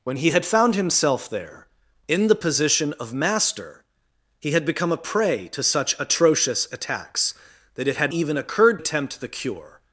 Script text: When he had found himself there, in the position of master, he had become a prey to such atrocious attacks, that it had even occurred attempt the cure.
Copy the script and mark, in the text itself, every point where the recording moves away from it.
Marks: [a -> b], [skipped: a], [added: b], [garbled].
When he had found himself there, in the position of master, he had become a prey to such atrocious attacks, that it had even occurred attempt the cure.